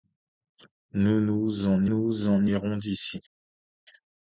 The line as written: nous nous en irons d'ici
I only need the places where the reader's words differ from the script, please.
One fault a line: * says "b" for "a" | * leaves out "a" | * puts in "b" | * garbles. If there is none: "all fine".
* puts in "nous en"